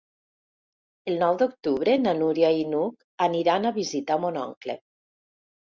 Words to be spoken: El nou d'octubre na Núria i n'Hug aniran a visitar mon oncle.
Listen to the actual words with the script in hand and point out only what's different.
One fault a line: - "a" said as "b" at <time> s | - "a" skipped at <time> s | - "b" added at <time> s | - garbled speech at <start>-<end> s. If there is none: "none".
none